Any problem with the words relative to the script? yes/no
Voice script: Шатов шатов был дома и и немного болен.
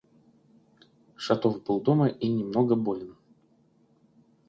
yes